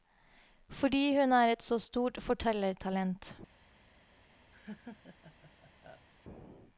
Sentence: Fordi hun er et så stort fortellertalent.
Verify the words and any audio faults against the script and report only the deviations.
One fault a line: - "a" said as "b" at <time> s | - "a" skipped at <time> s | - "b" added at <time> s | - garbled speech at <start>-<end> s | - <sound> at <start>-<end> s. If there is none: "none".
- laugh at 4.5-6.1 s